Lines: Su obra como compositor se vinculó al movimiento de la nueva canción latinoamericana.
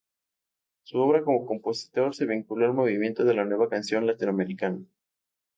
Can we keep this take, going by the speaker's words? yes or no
yes